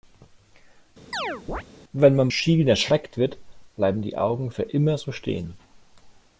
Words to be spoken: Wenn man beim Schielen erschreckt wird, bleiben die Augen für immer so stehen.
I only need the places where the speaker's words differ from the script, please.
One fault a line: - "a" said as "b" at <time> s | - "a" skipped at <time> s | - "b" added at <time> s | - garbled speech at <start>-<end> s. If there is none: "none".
- "beim" skipped at 2.3 s